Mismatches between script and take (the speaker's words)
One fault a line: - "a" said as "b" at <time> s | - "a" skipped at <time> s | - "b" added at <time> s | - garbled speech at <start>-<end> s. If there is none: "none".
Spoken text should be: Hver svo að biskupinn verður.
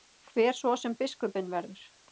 - "að" said as "sem" at 0.8 s